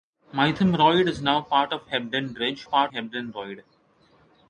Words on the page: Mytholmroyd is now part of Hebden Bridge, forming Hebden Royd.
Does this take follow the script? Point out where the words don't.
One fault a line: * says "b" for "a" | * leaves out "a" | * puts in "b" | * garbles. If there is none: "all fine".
* says "part" for "forming"